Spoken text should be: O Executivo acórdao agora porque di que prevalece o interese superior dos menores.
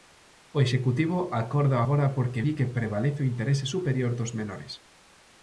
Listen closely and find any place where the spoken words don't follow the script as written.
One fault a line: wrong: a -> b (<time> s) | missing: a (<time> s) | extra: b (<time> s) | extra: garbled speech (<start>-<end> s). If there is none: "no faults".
no faults